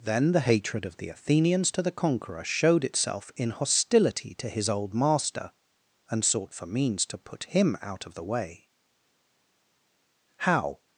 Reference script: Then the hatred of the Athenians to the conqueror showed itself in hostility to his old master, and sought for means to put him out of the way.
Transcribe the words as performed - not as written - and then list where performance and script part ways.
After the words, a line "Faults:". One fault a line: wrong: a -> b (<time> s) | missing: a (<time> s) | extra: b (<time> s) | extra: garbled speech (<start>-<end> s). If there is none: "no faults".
Then the hatred of the Athenians to the conqueror showed itself in hostility to his old master, and sought for means to put him out of the way. How
Faults:
extra: How (10.4 s)